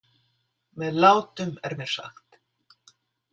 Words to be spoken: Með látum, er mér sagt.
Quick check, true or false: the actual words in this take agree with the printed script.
true